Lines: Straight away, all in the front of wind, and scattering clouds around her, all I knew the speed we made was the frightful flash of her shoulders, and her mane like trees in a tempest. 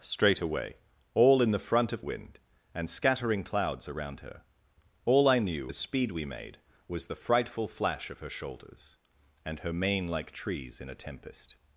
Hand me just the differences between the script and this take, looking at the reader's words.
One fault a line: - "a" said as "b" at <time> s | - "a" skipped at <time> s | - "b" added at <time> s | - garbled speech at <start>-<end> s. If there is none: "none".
none